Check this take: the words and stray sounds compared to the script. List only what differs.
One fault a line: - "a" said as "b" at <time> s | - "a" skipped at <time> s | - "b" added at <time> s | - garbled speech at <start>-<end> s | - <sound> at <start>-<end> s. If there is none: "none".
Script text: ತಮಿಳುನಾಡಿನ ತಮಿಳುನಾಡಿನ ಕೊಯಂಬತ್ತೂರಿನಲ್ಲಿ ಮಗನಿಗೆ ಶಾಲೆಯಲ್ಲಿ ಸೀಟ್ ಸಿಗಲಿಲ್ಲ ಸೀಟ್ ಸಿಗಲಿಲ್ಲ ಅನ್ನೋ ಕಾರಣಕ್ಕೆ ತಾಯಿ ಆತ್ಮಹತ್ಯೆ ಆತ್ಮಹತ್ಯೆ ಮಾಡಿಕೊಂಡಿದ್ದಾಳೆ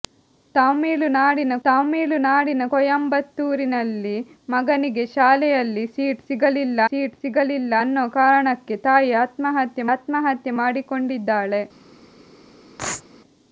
- sneeze at 12.8-13.0 s